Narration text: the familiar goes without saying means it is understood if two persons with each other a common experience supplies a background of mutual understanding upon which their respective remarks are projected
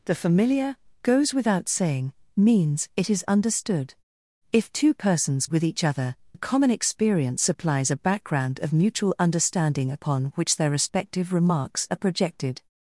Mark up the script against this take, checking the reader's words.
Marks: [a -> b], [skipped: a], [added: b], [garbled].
the familiar goes without saying means it is understood if two persons with each other a common experience supplies a background of mutual understanding upon which their respective remarks are projected